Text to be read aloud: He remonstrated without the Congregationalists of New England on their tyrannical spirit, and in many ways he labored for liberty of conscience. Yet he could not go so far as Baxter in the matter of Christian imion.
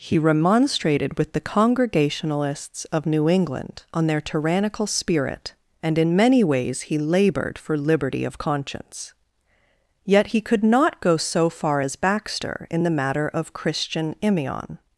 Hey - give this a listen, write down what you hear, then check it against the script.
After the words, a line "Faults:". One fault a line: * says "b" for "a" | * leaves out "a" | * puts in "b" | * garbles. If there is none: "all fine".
He remonstrated with the Congregationalists of New England on their tyrannical spirit, and in many ways he labored for liberty of conscience. Yet he could not go so far as Baxter in the matter of Christian imion.
Faults:
* says "with" for "without"